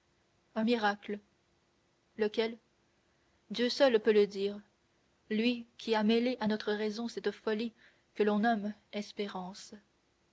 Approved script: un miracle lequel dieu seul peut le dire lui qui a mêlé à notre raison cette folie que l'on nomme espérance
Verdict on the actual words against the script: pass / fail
pass